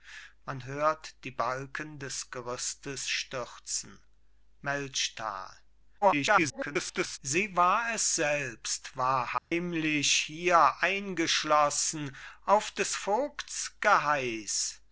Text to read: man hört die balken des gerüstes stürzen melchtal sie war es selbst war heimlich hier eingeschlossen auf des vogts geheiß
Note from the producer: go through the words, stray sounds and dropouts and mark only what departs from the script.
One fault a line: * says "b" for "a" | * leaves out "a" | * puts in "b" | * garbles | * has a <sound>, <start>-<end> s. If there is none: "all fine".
* garbles
* has a dropout, 9.4-9.5 s